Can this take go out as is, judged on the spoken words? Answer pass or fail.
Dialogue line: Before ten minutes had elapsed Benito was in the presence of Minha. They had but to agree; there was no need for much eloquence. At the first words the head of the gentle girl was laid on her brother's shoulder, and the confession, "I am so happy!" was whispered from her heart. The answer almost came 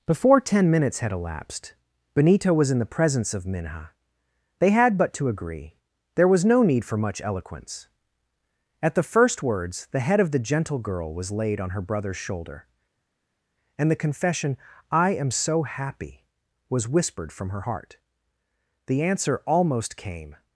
pass